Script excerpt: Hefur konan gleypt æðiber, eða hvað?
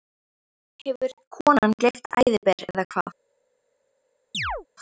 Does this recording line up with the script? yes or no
yes